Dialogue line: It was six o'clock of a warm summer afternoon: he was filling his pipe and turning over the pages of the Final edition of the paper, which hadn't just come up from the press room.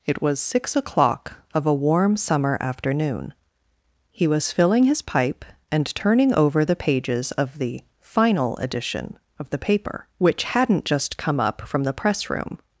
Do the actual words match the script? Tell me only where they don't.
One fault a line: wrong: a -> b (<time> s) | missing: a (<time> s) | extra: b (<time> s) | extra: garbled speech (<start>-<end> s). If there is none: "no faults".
no faults